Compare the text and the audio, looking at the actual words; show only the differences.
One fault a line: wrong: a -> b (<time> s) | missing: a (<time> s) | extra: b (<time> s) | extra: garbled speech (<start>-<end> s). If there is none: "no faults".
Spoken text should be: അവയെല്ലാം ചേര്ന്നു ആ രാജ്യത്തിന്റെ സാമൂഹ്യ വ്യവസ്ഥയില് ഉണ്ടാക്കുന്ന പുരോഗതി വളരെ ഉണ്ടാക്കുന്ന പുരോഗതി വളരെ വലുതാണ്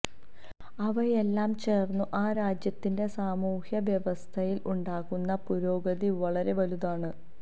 missing: ഉണ്ടാക്കുന്ന പുരോഗതി വളരെ (6.5 s)